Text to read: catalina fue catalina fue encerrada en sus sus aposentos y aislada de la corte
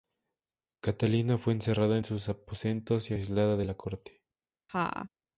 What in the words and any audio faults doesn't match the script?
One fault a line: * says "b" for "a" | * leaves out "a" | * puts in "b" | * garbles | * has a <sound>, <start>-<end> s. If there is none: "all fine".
* leaves out "catalina fue"
* leaves out "sus"
* has a laugh, 4.7-5.1 s